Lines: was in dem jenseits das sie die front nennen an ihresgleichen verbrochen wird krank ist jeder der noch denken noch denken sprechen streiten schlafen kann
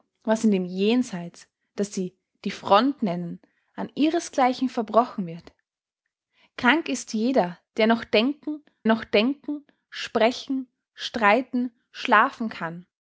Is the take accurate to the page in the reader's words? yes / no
yes